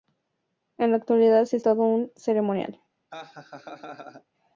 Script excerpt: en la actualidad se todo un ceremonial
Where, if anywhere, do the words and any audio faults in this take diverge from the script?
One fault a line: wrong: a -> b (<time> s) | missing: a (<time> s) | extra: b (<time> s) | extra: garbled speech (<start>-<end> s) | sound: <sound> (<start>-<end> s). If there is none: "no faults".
sound: laugh (3.1-4.2 s)